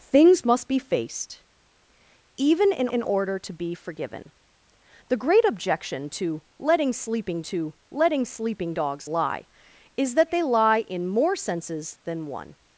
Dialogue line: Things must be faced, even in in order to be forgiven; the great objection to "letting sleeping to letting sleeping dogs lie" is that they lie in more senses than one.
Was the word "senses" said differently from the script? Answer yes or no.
no